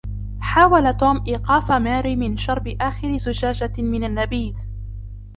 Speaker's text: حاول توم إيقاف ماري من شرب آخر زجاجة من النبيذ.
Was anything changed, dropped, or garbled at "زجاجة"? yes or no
no